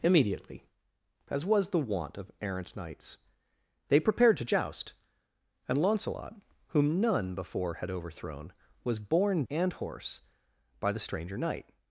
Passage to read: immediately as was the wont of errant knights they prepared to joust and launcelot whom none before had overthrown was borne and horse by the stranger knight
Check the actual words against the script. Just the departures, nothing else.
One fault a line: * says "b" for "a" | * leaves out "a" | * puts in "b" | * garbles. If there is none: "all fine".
all fine